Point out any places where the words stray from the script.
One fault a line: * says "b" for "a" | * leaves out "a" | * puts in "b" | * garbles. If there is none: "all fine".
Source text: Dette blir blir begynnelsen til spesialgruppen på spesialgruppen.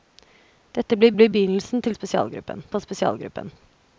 all fine